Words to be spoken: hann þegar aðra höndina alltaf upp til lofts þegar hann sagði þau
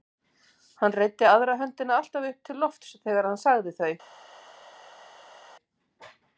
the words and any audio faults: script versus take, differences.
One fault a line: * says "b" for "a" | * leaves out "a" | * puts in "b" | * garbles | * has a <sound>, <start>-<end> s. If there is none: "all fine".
* says "reiddi" for "þegar"